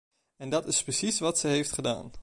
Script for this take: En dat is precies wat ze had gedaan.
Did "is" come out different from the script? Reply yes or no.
no